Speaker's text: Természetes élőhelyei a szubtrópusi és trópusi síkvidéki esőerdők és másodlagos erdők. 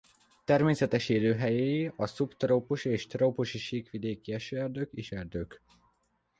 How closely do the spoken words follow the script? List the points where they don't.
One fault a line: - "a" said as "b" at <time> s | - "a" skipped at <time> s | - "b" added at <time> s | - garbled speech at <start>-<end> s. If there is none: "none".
- "másodlagos" skipped at 5.1 s